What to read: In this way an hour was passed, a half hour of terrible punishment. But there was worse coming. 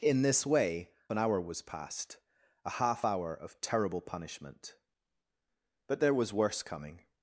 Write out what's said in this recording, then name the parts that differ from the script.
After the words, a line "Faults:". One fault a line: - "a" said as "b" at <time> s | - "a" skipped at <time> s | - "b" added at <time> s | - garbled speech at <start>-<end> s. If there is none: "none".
In this way an hour was passed, a half hour of terrible punishment. But there was worse coming.
Faults:
none